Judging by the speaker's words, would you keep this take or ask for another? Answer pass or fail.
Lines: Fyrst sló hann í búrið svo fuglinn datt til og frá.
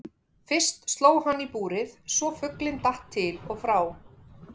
pass